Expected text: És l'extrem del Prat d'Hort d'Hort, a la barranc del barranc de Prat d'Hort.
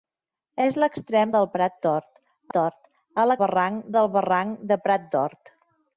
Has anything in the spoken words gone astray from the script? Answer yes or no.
no